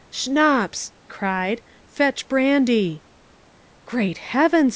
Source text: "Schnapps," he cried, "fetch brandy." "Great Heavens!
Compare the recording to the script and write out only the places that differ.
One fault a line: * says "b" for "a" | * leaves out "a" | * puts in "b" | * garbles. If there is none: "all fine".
* leaves out "he"